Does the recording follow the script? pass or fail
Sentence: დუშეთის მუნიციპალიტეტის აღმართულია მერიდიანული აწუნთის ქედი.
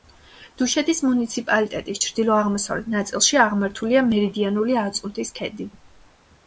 fail